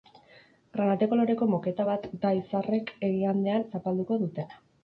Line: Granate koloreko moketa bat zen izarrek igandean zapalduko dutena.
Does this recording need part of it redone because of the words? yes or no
yes